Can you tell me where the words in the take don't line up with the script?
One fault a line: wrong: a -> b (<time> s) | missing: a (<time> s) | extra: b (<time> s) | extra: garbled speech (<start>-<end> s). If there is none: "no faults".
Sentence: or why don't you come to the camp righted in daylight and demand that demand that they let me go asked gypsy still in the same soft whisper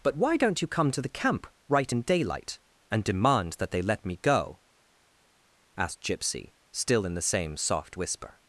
wrong: or -> but (0.0 s)
wrong: righted -> right (1.7 s)
missing: demand that (3.7 s)